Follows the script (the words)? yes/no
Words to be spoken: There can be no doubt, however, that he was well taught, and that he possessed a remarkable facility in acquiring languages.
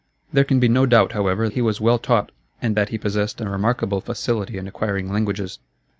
no